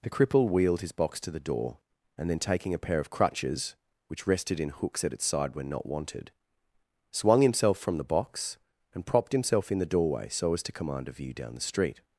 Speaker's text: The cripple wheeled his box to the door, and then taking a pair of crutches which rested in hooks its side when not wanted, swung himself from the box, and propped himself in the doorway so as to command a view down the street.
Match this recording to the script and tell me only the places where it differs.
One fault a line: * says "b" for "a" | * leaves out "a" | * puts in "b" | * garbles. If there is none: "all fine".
* puts in "at"